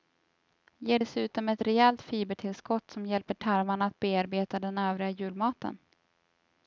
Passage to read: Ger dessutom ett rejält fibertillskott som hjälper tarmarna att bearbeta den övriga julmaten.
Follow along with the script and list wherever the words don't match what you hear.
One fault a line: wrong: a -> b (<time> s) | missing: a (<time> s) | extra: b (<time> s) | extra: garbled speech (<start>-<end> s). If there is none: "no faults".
no faults